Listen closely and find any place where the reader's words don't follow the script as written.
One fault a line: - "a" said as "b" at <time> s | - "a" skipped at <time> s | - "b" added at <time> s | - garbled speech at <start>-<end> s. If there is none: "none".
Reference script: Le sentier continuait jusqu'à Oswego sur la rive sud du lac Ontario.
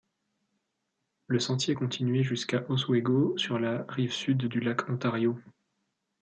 none